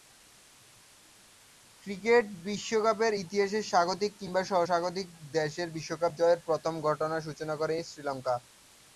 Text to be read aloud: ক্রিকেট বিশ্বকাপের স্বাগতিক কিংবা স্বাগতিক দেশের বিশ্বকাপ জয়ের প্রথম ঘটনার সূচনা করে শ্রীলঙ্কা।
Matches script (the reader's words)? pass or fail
fail